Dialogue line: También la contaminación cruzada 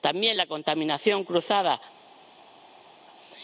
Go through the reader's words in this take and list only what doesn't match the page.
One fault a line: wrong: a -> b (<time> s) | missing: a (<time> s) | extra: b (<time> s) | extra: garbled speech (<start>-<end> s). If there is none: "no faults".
no faults